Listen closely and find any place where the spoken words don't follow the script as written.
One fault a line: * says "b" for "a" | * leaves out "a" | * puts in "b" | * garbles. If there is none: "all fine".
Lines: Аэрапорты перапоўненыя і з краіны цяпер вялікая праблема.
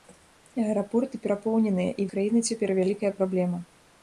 all fine